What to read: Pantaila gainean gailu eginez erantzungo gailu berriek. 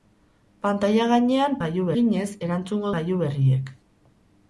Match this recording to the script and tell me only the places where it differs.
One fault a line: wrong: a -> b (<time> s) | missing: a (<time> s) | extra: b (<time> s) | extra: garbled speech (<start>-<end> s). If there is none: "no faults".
no faults